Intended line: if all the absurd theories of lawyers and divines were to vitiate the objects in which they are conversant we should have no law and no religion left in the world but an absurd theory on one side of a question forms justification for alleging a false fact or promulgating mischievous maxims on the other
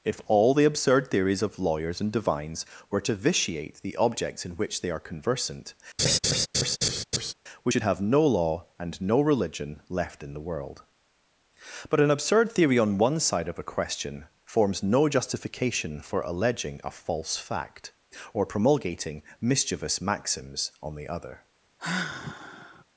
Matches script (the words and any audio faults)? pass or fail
fail